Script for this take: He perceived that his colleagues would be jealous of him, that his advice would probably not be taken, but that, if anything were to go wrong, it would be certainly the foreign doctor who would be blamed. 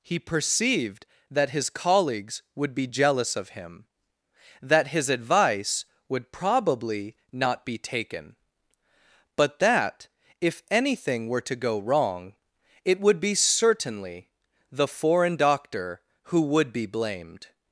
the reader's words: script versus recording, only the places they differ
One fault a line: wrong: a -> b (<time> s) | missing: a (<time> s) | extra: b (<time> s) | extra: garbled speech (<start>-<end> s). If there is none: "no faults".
no faults